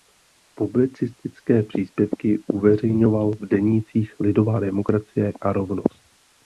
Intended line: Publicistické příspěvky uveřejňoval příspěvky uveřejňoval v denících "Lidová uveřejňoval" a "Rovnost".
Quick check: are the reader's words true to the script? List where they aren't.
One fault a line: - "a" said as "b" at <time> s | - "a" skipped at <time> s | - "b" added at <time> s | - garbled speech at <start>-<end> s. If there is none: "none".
- "příspěvky uveřejňoval" skipped at 3.3 s
- "uveřejňoval" said as "demokracie" at 4.6 s